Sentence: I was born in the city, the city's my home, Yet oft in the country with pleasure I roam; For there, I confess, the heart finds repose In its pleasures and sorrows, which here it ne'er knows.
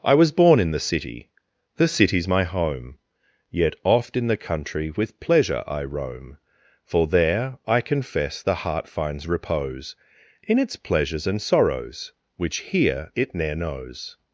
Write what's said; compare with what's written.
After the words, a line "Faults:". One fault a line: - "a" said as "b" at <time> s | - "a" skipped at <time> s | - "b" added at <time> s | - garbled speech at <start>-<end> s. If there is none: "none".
I was born in the city, the city's my home, Yet oft in the country with pleasure I roam; For there, I confess, the heart finds repose In its pleasures and sorrows, which here it ne'er knows.
Faults:
none